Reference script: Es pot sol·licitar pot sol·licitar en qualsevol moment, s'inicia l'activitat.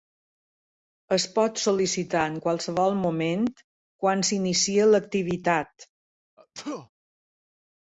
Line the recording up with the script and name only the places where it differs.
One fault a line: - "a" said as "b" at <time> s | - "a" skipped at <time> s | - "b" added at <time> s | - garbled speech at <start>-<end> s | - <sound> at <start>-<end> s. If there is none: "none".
- "pot sol·licitar" skipped at 2.2 s
- "quan" added at 4.1 s
- sneeze at 6.4-6.9 s